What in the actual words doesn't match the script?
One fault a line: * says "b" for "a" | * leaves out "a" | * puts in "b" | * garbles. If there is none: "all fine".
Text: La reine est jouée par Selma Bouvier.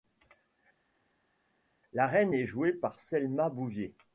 all fine